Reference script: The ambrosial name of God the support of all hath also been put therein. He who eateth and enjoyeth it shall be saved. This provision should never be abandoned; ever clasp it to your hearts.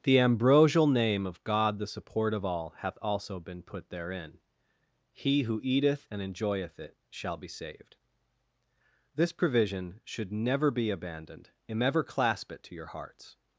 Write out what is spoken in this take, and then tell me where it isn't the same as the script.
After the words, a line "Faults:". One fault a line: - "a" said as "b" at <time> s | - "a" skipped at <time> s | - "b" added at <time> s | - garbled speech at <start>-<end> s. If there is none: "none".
The ambrosial name of God the support of all hath also been put therein. He who eateth and enjoyeth it shall be saved. This provision should never be abandoned; and ever clasp it to your hearts.
Faults:
- "and" added at 11.7 s